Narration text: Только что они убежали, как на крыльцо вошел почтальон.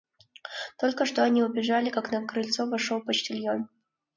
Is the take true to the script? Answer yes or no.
yes